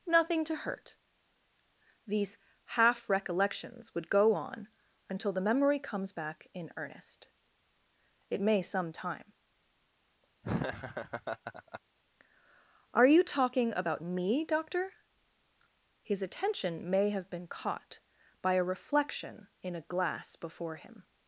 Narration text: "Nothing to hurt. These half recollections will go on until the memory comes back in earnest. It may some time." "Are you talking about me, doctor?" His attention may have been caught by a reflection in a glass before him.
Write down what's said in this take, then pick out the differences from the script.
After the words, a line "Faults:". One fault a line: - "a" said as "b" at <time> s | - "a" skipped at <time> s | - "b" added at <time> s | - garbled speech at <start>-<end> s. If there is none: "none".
"Nothing to hurt. These half recollections would go on until the memory comes back in earnest. It may some time." "Are you talking about me, doctor?" His attention may have been caught by a reflection in a glass before him.
Faults:
- "will" said as "would" at 3.9 s